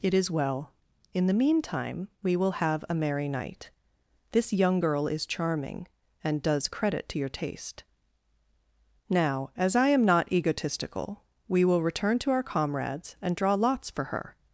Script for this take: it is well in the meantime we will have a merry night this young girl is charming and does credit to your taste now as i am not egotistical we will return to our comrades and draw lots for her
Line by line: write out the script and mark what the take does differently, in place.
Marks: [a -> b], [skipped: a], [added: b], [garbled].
it is well in the meantime we will have a merry night this young girl is charming and does credit to your taste now as i am not egotistical we will return to our comrades and draw lots for her